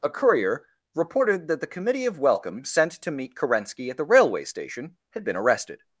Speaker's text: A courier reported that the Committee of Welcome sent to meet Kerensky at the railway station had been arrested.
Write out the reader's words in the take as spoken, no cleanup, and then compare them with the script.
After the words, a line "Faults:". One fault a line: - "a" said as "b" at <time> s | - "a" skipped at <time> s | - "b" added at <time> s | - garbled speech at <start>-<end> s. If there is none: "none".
A courier reported that the Committee of Welcome sent to meet Kerensky at the railway station had been arrested.
Faults:
none